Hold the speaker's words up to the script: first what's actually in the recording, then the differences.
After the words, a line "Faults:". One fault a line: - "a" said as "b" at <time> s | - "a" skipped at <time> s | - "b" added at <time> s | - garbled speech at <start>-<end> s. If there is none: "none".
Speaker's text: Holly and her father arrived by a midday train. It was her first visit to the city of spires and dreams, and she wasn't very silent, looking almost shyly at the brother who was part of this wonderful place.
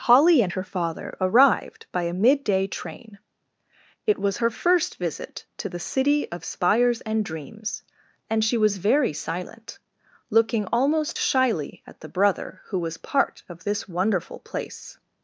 Holly and her father arrived by a midday train. It was her first visit to the city of spires and dreams, and she was very silent, looking almost shyly at the brother who was part of this wonderful place.
Faults:
- "wasn't" said as "was" at 8.6 s